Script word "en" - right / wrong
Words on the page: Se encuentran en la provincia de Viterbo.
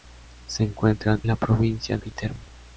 wrong